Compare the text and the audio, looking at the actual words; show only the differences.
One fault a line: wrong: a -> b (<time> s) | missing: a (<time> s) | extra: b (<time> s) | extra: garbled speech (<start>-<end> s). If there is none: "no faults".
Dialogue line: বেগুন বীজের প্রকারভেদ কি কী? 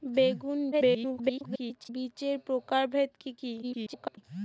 extra: garbled speech (0.7-1.9 s)
extra: garbled speech (3.6-4.2 s)